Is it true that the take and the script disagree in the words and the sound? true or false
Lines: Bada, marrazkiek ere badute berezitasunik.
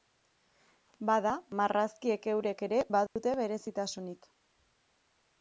true